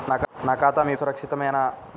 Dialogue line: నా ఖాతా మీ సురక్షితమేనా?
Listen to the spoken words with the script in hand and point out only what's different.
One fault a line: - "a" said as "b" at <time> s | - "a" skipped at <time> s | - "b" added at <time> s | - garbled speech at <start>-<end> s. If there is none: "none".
none